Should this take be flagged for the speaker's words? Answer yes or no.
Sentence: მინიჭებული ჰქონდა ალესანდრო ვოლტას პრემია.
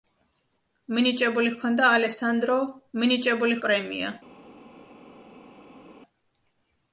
yes